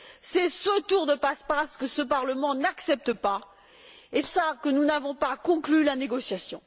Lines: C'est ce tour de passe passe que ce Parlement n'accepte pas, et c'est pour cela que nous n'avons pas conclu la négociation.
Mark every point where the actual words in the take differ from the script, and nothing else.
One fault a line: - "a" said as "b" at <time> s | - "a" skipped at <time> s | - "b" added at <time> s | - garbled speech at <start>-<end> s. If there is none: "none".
- "c'est pour" skipped at 4.2 s